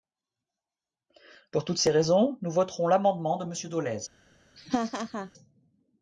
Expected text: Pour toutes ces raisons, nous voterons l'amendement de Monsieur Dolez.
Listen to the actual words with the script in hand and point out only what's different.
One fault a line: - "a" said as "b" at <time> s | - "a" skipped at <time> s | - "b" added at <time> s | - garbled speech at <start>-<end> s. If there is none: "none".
none